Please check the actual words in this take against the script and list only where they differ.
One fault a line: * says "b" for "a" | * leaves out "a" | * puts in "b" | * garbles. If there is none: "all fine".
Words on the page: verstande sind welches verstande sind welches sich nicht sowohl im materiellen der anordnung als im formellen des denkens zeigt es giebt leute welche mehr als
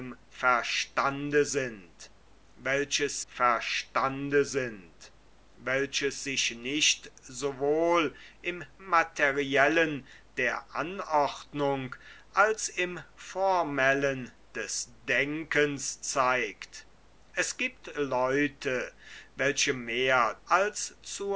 all fine